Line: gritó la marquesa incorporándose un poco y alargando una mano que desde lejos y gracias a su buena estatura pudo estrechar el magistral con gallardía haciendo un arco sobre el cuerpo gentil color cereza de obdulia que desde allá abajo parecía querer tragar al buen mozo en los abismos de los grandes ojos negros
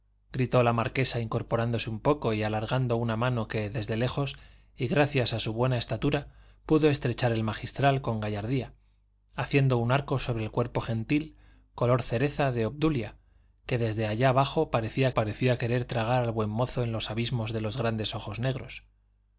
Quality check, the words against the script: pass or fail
fail